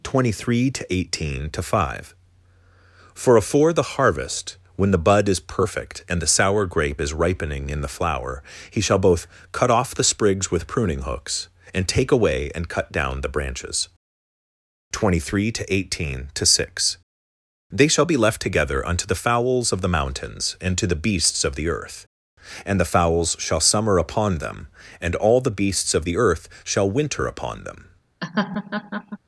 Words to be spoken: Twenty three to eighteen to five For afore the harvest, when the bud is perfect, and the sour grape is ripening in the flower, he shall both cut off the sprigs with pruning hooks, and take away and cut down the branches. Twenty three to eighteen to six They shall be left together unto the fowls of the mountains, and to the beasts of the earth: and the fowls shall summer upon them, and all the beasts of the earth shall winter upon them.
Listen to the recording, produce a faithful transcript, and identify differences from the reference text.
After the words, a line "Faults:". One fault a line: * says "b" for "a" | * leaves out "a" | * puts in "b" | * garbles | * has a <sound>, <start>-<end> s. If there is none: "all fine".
Twenty three to eighteen to five For afore the harvest, when the bud is perfect, and the sour grape is ripening in the flower, he shall both cut off the sprigs with pruning hooks, and take away and cut down the branches. Twenty three to eighteen to six They shall be left together unto the fowls of the mountains, and to the beasts of the earth: and the fowls shall summer upon them, and all the beasts of the earth shall winter upon them.
Faults:
* has a laugh, 28.2-29.2 s